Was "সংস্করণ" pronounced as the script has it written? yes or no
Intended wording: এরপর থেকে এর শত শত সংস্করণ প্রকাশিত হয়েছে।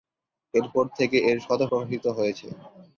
no